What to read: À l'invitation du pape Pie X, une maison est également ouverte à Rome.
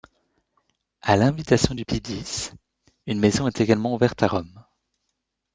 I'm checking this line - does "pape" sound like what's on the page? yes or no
no